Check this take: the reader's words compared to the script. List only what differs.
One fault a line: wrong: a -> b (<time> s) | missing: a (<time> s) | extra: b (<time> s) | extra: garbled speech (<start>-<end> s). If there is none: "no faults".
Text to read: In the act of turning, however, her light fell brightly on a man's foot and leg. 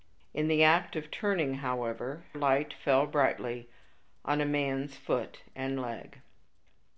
missing: her (2.2 s)